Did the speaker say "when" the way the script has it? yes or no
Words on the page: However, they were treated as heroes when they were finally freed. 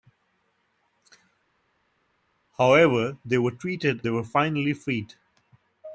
no